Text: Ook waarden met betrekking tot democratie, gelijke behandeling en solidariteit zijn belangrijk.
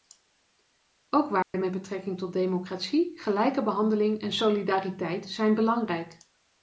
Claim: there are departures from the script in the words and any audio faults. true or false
true